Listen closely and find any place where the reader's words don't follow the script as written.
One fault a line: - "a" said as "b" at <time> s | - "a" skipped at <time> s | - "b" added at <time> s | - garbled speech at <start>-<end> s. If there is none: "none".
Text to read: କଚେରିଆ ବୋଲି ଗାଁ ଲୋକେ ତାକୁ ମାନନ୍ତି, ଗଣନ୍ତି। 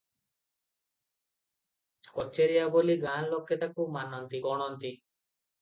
none